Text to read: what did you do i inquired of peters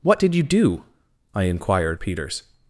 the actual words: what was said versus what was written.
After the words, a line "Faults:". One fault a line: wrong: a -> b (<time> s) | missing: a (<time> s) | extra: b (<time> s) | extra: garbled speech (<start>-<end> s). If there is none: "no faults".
what did you do i inquired peters
Faults:
missing: of (2.0 s)